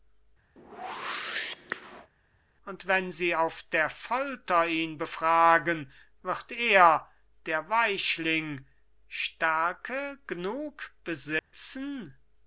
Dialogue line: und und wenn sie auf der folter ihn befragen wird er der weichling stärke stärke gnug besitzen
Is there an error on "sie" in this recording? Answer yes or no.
no